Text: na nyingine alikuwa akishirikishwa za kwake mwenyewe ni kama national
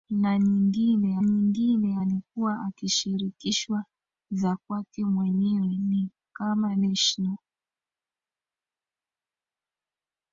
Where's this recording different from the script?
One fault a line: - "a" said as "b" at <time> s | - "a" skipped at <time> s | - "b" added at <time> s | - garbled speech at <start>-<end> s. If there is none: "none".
- "nyingine" added at 1.2 s